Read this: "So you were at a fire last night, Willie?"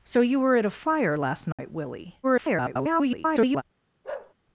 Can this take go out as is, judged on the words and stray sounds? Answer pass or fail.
fail